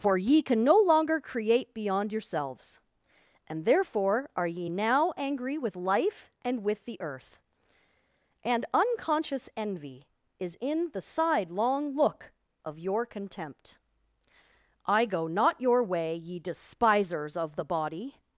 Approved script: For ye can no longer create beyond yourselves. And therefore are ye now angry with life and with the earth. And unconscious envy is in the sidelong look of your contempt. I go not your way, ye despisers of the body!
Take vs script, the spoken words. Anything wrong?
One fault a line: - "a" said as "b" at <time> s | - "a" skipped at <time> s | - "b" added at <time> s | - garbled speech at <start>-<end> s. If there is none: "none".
none